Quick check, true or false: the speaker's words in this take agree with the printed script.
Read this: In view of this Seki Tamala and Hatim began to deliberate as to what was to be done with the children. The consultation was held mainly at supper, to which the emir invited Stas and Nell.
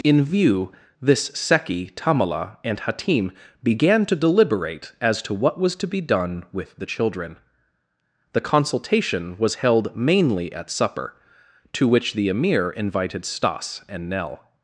false